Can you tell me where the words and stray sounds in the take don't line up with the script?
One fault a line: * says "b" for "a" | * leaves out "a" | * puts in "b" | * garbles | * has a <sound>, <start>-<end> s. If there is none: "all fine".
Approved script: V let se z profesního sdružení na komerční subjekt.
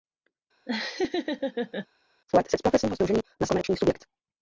* has a laugh, 0.7-1.9 s